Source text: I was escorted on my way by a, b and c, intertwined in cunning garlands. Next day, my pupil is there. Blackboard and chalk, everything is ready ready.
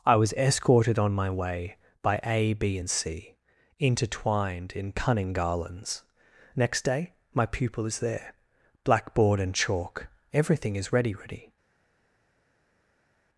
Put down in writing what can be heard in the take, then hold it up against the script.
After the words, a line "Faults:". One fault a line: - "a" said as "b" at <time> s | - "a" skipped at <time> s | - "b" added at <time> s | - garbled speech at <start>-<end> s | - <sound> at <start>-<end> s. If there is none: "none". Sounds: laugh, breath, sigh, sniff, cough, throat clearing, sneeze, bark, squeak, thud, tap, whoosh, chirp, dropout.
I was escorted on my way by a, b and c, intertwined in cunning garlands. Next day, my pupil is there. Blackboard and chalk, everything is ready ready.
Faults:
none